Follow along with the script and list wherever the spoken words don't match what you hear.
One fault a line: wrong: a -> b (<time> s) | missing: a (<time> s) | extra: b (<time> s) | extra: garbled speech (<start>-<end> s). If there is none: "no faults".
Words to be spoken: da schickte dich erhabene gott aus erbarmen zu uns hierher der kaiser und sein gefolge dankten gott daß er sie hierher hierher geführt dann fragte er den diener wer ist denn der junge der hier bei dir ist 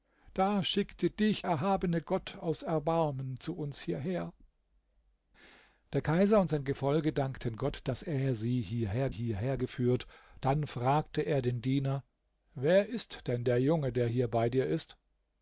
no faults